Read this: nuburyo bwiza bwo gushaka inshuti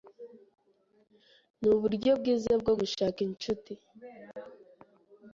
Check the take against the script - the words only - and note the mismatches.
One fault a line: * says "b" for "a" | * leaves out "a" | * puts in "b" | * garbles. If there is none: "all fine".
all fine